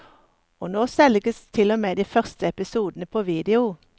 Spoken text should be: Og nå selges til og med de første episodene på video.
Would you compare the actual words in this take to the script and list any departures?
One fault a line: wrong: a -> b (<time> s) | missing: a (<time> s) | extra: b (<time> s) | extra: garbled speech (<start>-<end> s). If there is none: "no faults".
no faults